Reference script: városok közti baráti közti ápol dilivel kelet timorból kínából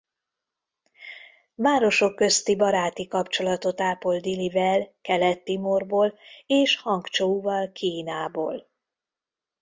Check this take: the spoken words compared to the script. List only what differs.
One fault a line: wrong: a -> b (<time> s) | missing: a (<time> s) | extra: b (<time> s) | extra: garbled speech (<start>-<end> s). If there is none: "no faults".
wrong: közti -> kapcsolatot (3.1 s)
extra: és hangcsouval (6.5 s)